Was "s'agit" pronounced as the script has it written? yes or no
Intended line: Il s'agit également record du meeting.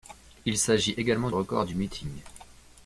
yes